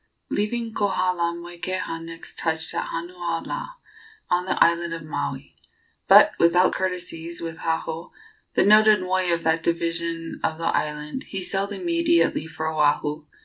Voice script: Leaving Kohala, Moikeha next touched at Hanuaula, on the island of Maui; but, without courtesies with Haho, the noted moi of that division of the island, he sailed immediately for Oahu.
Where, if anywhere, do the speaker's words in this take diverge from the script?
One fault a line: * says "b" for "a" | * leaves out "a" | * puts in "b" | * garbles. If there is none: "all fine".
all fine